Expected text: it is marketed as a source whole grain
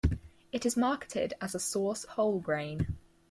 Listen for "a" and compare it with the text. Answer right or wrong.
right